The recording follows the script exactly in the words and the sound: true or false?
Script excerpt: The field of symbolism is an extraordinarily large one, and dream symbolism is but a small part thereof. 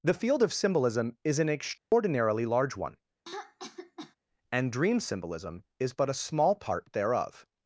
false